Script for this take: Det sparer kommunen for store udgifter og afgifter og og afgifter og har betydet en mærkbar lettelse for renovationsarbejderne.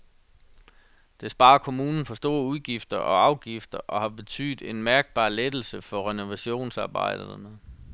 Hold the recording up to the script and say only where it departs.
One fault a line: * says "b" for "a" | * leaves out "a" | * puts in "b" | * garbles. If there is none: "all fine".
* leaves out "og afgifter og"